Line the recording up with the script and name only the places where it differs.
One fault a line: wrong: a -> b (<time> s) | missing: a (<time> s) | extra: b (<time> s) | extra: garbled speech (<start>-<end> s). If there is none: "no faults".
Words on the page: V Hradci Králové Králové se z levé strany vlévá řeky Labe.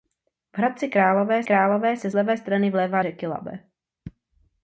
no faults